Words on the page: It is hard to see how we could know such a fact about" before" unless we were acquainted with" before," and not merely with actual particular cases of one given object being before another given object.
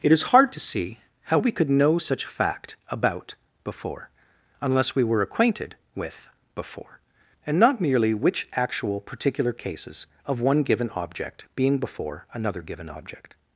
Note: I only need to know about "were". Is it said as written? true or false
true